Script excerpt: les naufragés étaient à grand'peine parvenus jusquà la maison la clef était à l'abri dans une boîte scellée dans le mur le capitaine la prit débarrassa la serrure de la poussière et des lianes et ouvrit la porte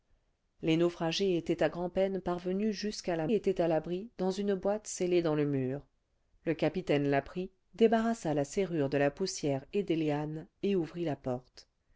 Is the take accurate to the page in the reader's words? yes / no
no